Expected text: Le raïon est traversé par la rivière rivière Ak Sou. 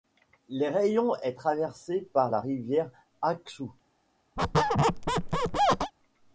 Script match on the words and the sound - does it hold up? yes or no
no